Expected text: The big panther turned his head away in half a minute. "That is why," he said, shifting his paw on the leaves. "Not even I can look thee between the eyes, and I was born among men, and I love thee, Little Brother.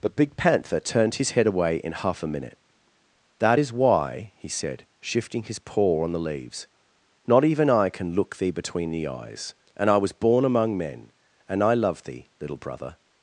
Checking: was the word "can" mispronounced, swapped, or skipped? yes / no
no